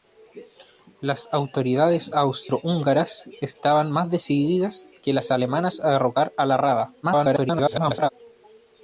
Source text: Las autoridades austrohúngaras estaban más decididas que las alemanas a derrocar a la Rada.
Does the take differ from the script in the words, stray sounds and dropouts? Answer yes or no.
yes